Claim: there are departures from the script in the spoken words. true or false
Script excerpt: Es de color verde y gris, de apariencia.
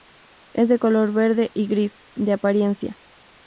false